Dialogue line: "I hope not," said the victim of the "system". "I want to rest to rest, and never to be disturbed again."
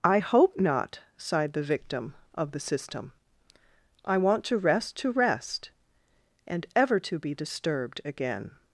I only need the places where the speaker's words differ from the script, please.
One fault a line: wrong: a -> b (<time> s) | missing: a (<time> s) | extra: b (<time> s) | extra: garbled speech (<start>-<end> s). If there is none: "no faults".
wrong: said -> sighed (1.2 s)
wrong: never -> ever (6.8 s)